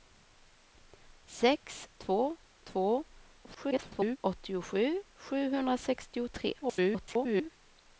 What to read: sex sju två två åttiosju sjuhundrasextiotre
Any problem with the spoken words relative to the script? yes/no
yes